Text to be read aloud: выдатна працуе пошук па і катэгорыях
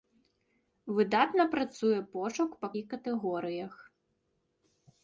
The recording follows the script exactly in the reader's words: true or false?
true